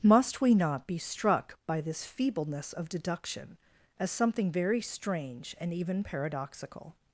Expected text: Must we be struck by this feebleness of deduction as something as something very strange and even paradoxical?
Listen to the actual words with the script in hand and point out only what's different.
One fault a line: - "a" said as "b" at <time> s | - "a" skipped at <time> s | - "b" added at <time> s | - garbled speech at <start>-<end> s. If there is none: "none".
- "not" added at 0.6 s
- "as something" skipped at 4.5 s